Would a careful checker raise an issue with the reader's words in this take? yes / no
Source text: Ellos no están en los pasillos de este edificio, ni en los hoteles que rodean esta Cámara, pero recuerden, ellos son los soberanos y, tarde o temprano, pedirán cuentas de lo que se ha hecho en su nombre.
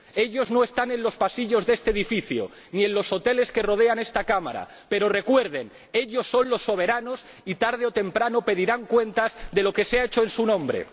no